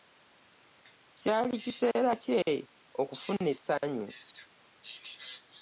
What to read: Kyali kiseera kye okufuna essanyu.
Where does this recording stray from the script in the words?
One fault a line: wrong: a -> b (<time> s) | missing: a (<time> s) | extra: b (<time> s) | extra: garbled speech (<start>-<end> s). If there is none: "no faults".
no faults